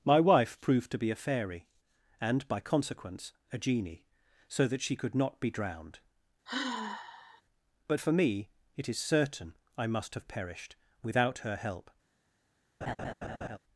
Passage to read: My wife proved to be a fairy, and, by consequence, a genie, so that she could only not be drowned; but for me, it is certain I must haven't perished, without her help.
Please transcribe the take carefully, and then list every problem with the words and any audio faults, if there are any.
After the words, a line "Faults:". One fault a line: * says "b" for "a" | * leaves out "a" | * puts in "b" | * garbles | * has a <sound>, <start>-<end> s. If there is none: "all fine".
My wife proved to be a fairy, and, by consequence, a genie, so that she could not be drowned; but for me, it is certain I must have perished, without her help.
Faults:
* leaves out "only"
* has a sigh, 6.5-7.4 s
* says "have" for "haven't"
* has a laugh, 12.8-13.6 s